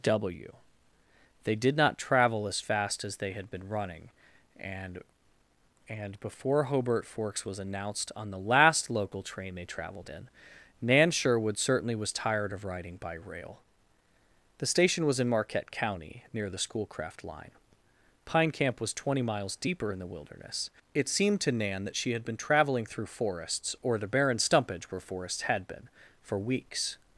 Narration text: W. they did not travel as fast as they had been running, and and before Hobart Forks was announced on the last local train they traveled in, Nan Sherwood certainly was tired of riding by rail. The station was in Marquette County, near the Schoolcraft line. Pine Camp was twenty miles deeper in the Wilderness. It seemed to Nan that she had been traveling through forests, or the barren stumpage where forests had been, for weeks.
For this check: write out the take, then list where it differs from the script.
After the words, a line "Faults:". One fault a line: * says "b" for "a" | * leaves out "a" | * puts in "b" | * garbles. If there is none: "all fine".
W. they did not travel as fast as they had been running, and and before Hobart Forks was announced on the last local train they traveled in, Nan Sherwood certainly was tired of riding by rail. The station was in Marquette County, near the Schoolcraft line. Pine Camp was twenty miles deeper in the Wilderness. It seemed to Nan that she had been traveling through forests, or the barren stumpage where forests had been, for weeks.
Faults:
all fine